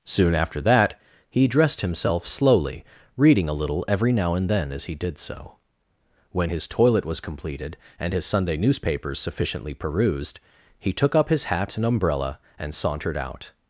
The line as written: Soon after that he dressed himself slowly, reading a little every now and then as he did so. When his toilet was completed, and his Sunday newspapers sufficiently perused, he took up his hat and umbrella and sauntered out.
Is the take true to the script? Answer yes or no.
yes